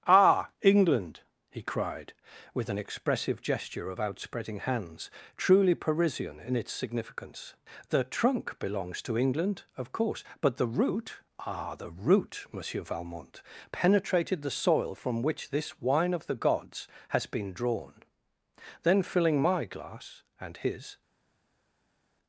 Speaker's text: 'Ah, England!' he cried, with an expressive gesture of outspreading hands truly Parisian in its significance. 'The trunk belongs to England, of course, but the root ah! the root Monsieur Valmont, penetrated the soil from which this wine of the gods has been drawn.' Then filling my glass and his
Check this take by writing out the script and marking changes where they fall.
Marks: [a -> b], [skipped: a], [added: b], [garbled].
'Ah, England!' he cried, with an expressive gesture of outspreading hands truly Parisian in its significance. 'The trunk belongs to England, of course, but the root ah! the root Monsieur Valmont, penetrated the soil from which this wine of the gods has been drawn.' Then filling my glass and his